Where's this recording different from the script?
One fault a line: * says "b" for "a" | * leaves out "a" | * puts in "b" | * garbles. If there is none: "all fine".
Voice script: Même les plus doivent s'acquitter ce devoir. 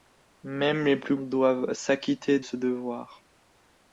all fine